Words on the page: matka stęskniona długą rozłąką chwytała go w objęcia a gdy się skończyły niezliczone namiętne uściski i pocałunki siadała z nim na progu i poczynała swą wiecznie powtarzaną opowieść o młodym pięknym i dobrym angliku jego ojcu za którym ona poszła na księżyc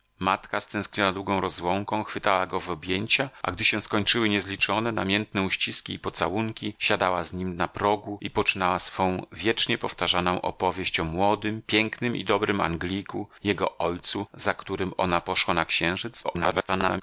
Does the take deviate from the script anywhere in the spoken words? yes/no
yes